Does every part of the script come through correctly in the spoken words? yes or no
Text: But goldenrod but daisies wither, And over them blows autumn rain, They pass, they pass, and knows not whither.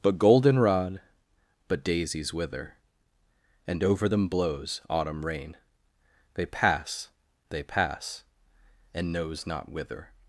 yes